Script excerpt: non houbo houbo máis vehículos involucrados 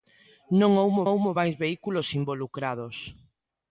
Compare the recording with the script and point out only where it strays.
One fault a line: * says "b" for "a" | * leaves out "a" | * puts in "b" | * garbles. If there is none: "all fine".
all fine